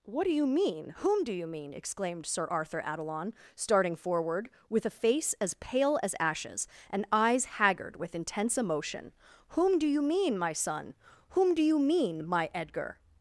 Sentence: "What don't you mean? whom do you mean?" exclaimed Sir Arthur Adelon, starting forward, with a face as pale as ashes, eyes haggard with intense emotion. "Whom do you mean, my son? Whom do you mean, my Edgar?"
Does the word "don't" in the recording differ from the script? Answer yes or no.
yes